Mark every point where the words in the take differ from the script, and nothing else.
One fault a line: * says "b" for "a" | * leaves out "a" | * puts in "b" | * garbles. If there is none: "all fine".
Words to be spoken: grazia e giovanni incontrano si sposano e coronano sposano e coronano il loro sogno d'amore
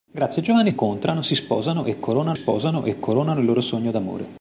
all fine